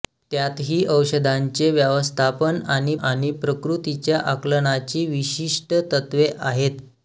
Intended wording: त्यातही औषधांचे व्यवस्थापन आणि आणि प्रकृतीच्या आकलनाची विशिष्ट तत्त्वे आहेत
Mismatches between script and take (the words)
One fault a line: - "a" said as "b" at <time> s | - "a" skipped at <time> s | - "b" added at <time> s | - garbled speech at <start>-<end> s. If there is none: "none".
none